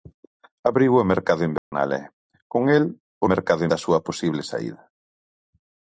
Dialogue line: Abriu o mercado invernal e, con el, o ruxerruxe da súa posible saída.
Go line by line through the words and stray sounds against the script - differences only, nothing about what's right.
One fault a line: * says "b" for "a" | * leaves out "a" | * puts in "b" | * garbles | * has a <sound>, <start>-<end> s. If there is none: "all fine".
* has a dropout, 1.6-1.7 s
* says "mercado" for "ruxerruxe"